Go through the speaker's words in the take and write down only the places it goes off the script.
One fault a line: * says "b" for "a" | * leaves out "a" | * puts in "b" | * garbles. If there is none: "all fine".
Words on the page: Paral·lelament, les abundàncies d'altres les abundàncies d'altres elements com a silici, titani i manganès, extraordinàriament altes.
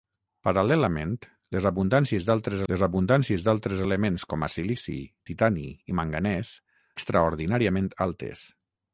all fine